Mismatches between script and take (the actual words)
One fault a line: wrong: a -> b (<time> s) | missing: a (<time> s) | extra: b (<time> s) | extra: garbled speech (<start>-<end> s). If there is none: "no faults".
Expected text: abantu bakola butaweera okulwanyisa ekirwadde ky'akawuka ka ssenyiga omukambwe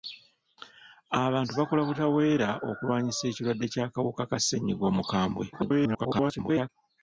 extra: garbled speech (5.5-6.7 s)